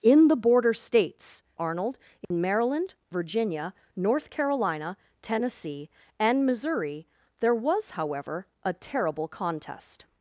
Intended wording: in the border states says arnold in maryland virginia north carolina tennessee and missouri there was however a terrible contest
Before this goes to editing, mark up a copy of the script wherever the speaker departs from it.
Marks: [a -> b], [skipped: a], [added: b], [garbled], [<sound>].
in the border states [skipped: says] arnold in [dropout] maryland virginia north carolina tennessee and missouri there was however a terrible contest